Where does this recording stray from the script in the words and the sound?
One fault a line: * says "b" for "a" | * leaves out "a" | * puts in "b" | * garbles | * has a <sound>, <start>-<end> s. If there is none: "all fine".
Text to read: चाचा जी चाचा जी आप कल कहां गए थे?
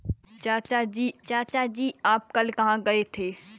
all fine